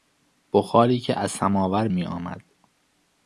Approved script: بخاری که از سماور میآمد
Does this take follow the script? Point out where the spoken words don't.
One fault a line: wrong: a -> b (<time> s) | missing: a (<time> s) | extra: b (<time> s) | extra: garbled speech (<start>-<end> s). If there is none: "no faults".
no faults